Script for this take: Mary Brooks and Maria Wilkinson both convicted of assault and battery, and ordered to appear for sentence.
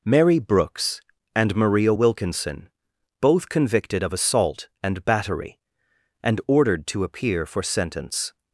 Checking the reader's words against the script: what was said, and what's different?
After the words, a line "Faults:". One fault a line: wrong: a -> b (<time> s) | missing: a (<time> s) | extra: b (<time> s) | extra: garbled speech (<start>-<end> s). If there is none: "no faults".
Mary Brooks and Maria Wilkinson both convicted of assault and battery, and ordered to appear for sentence.
Faults:
no faults